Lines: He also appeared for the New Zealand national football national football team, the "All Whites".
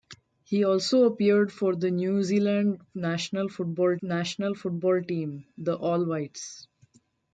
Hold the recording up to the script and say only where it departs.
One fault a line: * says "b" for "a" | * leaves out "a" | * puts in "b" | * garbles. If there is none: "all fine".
all fine